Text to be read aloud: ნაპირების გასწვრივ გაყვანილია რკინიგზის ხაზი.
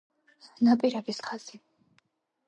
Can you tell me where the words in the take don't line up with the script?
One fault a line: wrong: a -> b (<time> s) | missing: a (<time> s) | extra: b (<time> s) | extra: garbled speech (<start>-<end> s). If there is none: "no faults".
missing: გასწვრივ გაყვანილია რკინიგზის (1.2 s)